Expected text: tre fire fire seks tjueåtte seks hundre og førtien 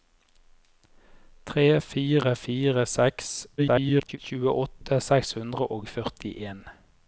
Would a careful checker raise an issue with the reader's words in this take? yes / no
yes